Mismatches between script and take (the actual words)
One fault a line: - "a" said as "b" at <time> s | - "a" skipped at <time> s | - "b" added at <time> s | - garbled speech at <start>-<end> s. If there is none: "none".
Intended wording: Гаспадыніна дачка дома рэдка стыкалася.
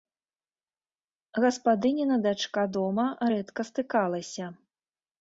none